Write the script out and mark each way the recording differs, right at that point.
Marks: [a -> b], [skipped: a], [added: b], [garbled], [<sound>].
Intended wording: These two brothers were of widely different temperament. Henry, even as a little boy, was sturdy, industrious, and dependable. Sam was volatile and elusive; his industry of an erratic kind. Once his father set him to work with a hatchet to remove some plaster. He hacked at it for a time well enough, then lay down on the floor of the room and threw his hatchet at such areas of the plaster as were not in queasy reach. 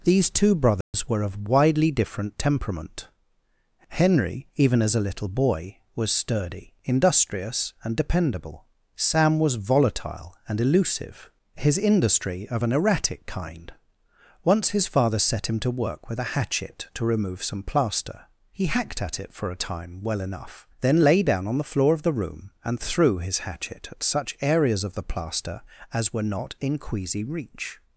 These two brothers [dropout] were of widely different temperament. Henry, even as a little boy, was sturdy, industrious, and dependable. Sam was volatile and elusive; his industry of an erratic kind. Once his father set him to work with a hatchet to remove some plaster. He hacked at it for a time well enough, then lay down on the floor of the room and threw his hatchet at such areas of the plaster as were not in queasy reach.